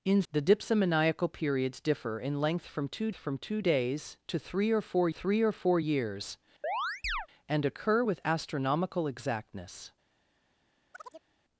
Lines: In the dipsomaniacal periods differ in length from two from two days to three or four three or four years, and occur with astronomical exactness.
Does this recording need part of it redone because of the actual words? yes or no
no